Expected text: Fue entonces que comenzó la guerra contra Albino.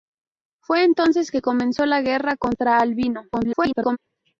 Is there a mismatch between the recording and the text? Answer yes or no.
yes